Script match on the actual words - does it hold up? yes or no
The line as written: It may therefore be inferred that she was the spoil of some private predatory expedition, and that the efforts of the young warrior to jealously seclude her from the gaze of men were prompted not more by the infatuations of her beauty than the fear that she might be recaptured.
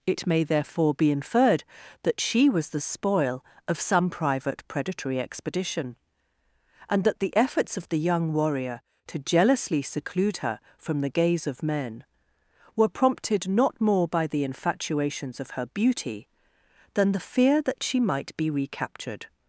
yes